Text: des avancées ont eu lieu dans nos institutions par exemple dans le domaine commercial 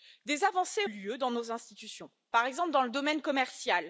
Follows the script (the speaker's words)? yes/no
no